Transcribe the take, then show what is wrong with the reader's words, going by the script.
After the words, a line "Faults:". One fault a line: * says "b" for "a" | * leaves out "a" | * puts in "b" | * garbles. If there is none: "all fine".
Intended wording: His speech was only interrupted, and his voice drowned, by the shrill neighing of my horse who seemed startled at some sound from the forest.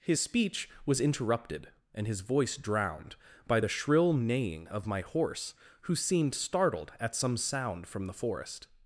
His speech was interrupted, and his voice drowned, by the shrill neighing of my horse who seemed startled at some sound from the forest.
Faults:
* leaves out "only"